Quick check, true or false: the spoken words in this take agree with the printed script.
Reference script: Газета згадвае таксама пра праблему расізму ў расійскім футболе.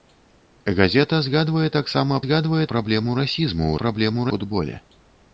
false